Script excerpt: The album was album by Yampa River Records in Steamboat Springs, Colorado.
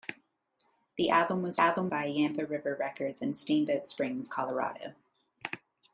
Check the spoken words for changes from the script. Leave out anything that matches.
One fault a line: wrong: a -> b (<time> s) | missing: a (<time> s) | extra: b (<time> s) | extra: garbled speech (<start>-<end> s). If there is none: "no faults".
no faults